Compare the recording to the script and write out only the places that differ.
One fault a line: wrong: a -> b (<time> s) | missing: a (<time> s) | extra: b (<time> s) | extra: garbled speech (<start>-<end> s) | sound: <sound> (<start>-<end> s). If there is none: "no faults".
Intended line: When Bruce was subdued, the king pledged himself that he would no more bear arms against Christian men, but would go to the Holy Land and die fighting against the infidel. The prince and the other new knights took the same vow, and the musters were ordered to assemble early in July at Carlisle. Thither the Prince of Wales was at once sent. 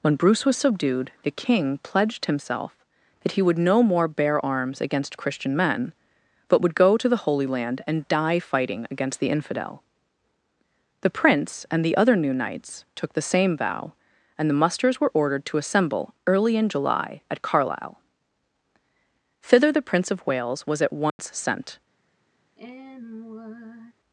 sound: dropout (21.1-21.2 s)
sound: sigh (22.6-23.9 s)